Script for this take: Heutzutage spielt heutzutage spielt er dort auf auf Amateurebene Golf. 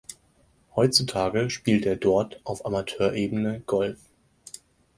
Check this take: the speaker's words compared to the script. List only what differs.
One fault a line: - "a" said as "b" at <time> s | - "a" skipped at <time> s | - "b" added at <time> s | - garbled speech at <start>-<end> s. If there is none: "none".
- "heutzutage spielt" skipped at 1.9 s
- "auf" skipped at 2.7 s